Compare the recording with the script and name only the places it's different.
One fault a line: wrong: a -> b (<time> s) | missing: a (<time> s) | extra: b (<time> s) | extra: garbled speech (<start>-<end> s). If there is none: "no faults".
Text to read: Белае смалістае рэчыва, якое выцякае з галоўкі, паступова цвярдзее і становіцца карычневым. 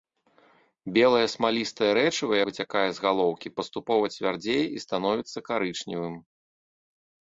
missing: якое (2.3 s)